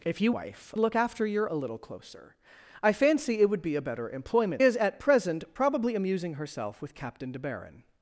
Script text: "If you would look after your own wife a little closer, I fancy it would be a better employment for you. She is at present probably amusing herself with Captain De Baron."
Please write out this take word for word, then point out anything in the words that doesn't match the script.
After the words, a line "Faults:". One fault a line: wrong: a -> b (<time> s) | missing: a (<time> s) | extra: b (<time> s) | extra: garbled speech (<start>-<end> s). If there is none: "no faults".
"If you wife look after your a little closer, I fancy it would be a better employment is at present probably amusing herself with Captain De Baron."
Faults:
wrong: would -> wife (0.3 s)
missing: own wife (1.5 s)
missing: for you She (4.6 s)